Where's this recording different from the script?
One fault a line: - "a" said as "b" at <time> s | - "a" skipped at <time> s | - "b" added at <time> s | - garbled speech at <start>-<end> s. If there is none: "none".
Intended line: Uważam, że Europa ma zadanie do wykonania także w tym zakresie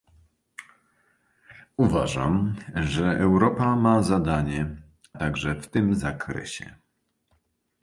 - "do wykonania" skipped at 4.8 s